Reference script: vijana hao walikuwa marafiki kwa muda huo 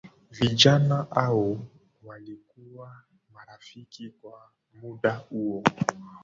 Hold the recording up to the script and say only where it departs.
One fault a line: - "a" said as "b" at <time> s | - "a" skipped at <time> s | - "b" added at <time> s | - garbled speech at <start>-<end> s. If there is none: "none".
none